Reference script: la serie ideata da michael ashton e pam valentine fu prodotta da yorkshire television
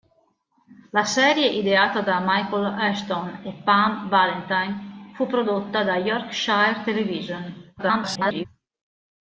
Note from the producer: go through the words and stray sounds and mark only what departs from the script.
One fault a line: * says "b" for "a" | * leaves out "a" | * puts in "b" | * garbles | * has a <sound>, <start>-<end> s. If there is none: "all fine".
* garbles